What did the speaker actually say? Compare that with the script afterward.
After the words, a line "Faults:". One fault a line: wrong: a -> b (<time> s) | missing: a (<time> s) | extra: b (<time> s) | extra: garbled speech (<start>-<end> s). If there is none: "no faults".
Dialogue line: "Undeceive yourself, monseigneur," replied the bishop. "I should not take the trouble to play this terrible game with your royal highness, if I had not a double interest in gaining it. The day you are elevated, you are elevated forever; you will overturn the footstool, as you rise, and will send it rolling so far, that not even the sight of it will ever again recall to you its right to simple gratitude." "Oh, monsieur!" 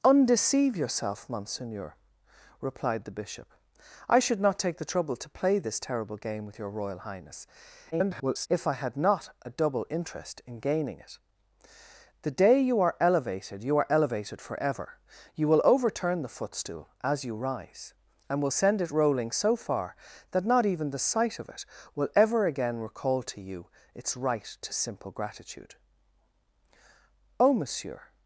"Undeceive yourself, monseigneur," replied the bishop. "I should not take the trouble to play this terrible game with your royal highness, [garbled] if I had not a double interest in gaining it. The day you are elevated, you are elevated forever; you will overturn the footstool, as you rise, and will send it rolling so far, that not even the sight of it will ever again recall to you its right to simple gratitude." "Oh, monsieur!"
Faults:
extra: garbled speech (7.9-8.5 s)